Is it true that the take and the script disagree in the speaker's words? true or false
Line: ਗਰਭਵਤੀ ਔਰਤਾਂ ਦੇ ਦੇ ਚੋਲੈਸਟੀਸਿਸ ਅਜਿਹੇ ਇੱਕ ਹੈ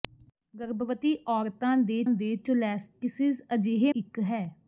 false